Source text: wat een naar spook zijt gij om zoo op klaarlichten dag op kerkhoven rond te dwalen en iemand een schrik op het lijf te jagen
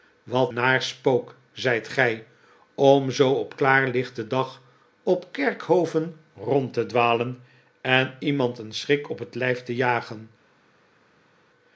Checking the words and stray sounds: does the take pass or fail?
fail